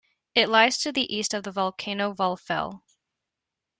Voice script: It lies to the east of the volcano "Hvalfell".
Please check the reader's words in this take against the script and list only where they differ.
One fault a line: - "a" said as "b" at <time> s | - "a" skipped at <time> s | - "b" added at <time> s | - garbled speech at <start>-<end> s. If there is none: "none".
none